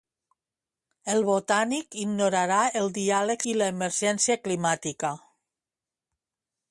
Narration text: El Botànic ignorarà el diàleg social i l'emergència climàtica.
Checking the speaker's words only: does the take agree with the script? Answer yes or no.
no